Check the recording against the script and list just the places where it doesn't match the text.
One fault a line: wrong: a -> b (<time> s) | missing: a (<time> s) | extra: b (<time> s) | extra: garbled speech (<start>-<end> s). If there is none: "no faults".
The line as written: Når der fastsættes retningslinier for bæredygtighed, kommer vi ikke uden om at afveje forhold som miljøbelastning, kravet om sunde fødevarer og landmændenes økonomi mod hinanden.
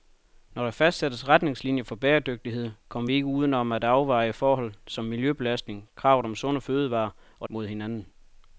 missing: landmændenes økonomi (7.5 s)